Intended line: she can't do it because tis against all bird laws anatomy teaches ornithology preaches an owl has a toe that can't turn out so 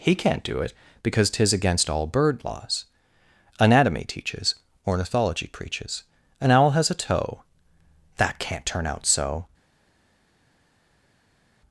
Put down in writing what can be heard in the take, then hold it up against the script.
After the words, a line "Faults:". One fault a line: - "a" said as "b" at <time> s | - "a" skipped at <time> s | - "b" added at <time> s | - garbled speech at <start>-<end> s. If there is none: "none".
he can't do it because tis against all bird laws anatomy teaches ornithology preaches an owl has a toe that can't turn out so
Faults:
- "she" said as "he" at 0.0 s